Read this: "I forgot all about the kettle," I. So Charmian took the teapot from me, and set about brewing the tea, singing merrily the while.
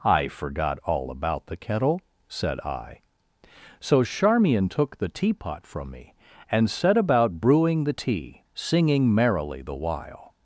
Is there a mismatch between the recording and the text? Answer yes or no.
yes